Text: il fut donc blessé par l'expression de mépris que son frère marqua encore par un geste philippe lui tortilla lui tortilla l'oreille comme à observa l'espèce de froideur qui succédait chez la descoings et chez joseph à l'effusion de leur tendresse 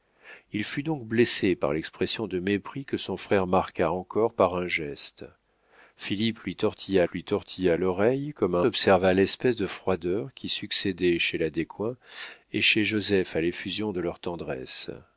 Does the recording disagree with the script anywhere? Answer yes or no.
no